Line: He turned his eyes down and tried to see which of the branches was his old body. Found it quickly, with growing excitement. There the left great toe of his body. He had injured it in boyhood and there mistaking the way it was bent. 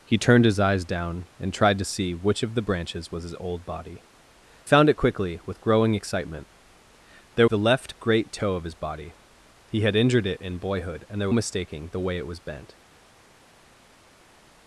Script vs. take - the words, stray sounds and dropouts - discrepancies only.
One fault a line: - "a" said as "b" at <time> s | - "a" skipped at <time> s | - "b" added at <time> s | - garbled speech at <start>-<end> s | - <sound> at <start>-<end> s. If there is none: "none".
none